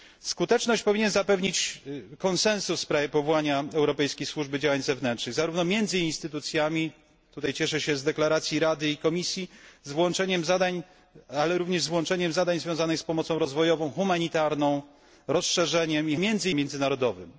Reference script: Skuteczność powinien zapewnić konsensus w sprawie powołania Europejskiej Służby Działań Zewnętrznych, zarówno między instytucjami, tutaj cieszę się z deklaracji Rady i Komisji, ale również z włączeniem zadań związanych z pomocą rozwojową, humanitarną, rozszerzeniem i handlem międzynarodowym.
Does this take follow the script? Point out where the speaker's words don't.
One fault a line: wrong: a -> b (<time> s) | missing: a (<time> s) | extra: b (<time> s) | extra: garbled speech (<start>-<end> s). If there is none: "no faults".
wrong: handlem -> między (16.2 s)